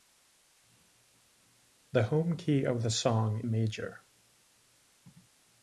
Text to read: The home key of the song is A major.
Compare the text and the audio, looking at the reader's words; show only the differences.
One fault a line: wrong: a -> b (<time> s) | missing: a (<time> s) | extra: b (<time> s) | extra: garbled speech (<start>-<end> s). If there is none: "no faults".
missing: is A (3.4 s)